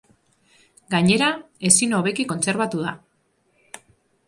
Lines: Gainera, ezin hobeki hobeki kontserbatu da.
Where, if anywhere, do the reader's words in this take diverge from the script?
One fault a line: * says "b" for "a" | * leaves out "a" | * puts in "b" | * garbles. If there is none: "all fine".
* leaves out "hobeki"